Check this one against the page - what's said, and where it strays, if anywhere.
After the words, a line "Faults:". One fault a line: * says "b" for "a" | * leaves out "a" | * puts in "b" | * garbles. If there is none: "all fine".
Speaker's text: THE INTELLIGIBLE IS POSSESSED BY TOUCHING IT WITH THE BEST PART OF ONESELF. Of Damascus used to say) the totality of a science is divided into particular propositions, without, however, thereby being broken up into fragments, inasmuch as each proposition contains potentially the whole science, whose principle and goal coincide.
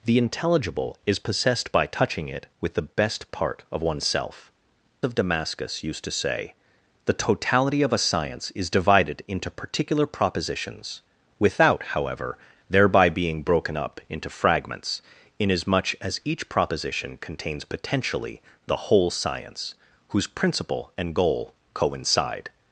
THE INTELLIGIBLE IS POSSESSED BY TOUCHING IT WITH THE BEST PART OF ONESELF. Of Damascus used to say) the totality of a science is divided into particular propositions, without, however, thereby being broken up into fragments, inasmuch as each proposition contains potentially the whole science, whose principle and goal coincide.
Faults:
all fine